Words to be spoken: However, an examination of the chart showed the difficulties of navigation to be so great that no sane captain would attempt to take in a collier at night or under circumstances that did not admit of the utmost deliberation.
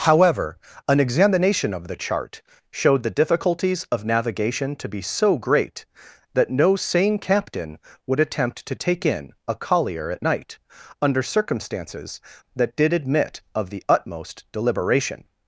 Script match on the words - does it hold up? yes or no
no